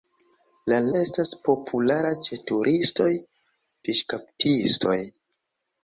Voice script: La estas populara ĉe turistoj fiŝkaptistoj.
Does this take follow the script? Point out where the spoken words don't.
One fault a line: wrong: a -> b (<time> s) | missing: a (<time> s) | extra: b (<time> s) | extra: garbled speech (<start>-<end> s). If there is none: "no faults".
no faults